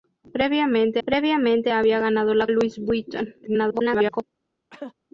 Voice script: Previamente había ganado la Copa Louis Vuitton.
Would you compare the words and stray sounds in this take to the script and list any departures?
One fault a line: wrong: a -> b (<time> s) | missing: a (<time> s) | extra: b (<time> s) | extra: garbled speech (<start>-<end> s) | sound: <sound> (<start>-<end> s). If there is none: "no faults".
extra: previamente (1.1 s)
missing: Copa (2.5 s)
extra: garbled speech (3.4-4.2 s)
sound: cough (4.7-4.9 s)